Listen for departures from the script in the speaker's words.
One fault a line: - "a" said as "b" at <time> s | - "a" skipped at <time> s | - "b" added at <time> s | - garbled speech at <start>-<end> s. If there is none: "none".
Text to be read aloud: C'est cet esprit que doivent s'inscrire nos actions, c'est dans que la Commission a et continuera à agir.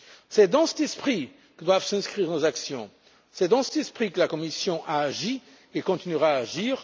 - "dans" added at 0.5 s
- "cet esprit" added at 3.6 s
- "agi" added at 5.0 s